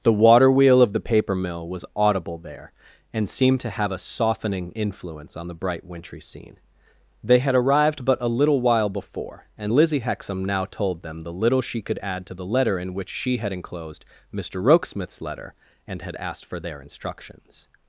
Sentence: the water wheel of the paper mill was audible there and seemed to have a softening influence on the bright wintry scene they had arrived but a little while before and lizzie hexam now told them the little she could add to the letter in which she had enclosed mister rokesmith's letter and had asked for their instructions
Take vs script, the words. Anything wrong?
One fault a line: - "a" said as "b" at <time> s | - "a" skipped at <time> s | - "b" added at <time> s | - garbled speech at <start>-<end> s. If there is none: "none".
none